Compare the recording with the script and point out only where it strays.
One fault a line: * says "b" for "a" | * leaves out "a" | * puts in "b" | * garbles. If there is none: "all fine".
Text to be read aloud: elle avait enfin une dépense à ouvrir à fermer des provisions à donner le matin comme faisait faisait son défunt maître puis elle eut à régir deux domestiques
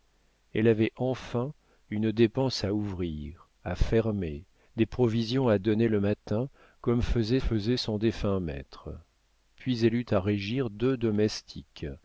all fine